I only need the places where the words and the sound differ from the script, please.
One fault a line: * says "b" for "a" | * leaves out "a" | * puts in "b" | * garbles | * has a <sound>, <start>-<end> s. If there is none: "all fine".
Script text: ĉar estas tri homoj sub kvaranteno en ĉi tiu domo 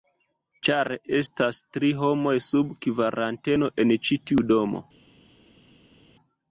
all fine